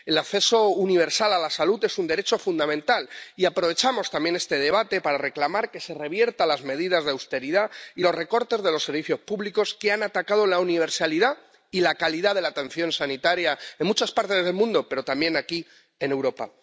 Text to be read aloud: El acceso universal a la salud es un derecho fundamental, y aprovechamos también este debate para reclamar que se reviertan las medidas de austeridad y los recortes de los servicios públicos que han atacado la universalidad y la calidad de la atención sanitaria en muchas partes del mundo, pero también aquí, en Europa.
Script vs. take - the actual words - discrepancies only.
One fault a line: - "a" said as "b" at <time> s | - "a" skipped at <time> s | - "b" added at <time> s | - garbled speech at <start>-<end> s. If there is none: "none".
none